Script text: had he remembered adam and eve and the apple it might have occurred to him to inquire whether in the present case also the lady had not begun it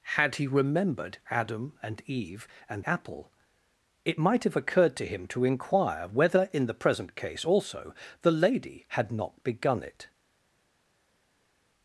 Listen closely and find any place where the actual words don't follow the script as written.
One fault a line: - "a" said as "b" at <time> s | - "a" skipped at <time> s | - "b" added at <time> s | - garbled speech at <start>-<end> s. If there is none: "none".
- "the" skipped at 2.8 s